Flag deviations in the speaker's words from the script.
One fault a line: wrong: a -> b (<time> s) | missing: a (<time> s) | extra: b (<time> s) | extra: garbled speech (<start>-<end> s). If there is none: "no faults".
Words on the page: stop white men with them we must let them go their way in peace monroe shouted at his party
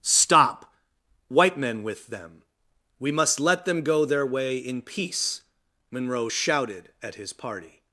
no faults